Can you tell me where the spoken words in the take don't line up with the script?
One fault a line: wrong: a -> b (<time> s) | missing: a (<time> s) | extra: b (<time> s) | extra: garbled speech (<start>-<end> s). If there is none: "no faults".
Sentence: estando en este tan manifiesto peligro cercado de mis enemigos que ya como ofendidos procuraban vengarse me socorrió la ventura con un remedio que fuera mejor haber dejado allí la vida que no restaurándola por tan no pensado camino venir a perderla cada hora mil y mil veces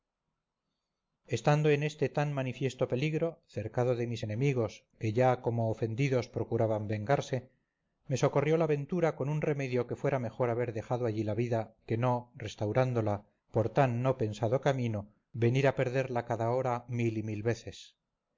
no faults